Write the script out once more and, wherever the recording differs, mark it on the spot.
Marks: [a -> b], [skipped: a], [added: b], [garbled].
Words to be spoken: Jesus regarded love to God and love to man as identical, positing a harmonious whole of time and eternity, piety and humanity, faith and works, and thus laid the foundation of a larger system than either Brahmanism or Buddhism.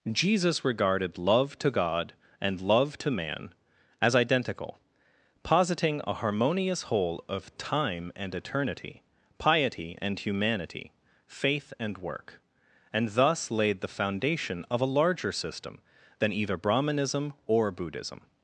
Jesus regarded love to God and love to man as identical, positing a harmonious whole of time and eternity, piety and humanity, faith and [works, -> work] and thus laid the foundation of a larger system than either Brahmanism or Buddhism.